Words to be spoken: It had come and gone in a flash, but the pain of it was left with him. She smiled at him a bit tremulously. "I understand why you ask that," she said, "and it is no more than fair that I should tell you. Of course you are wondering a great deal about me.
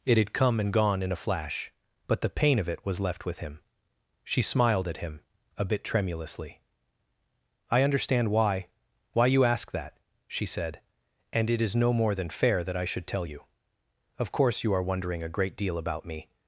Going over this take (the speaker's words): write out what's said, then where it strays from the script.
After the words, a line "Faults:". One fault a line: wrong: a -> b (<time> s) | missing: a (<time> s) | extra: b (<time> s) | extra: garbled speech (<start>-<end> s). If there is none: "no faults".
It had come and gone in a flash, but the pain of it was left with him. She smiled at him a bit tremulously. "I understand why why you ask that," she said, "and it is no more than fair that I should tell you. Of course you are wondering a great deal about me.
Faults:
extra: why (9.1 s)